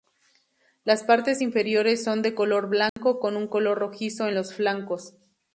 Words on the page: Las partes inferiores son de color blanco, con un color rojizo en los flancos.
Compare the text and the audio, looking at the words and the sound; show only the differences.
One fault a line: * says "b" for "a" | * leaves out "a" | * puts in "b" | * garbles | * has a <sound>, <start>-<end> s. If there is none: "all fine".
* has a dropout, 2.9-3.0 s